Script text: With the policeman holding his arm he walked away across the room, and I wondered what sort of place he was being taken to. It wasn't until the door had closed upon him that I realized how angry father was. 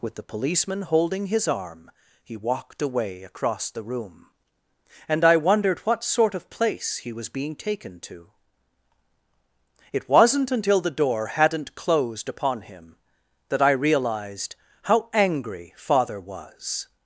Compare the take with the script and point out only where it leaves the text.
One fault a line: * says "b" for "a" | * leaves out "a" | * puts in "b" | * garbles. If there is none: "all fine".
* says "hadn't" for "had"